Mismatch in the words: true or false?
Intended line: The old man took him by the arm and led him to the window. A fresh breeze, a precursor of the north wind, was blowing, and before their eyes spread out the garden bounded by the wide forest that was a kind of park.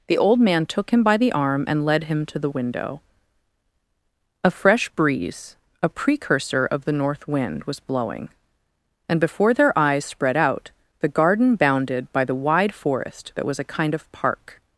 false